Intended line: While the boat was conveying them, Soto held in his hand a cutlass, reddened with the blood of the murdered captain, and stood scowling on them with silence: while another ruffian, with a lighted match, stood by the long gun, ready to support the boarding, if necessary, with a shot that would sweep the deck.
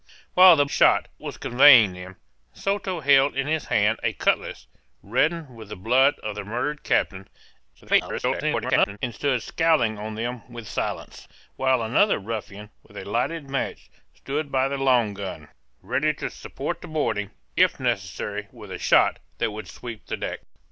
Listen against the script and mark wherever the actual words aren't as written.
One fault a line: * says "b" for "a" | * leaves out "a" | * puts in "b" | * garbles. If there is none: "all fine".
* says "shot" for "boat"
* garbles